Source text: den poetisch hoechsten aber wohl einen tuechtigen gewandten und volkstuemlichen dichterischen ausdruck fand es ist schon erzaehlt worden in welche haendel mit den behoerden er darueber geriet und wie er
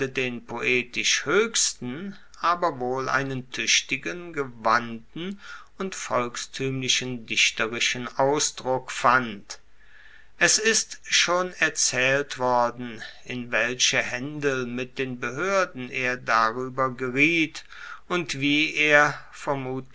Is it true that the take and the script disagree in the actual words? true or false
false